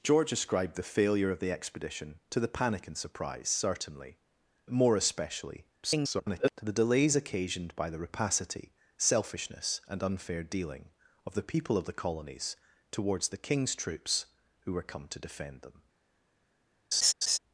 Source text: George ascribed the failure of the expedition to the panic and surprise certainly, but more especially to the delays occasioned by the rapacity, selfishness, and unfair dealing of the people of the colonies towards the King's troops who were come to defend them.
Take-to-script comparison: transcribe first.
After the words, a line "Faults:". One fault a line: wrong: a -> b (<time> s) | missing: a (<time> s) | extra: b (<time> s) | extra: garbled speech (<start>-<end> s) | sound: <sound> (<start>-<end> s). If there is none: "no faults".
George ascribed the failure of the expedition to the panic and surprise certainly, more especially [garbled] to the delays occasioned by the rapacity, selfishness, and unfair dealing of the people of the colonies towards the King's troops who were come to defend them.
Faults:
missing: but (4.2 s)
extra: garbled speech (5.8-6.5 s)
sound: laugh (16.9-17.4 s)